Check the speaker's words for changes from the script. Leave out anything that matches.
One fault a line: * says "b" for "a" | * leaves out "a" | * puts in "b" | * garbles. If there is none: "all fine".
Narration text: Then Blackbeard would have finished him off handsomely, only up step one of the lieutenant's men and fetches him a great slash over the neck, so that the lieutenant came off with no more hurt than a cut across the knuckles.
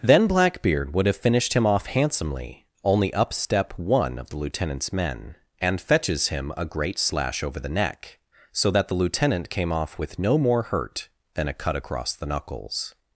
all fine